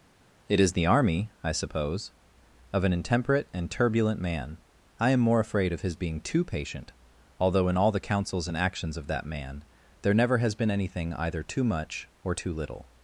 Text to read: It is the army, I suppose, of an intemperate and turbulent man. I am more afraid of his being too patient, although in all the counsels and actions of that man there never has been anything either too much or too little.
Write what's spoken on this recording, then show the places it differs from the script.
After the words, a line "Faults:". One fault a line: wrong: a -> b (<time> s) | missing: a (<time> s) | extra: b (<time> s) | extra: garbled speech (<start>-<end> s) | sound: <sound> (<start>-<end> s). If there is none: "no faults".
It is the army, I suppose, of an intemperate and turbulent man. I am more afraid of his being too patient, although in all the counsels and actions of that man there never has been anything either too much or too little.
Faults:
no faults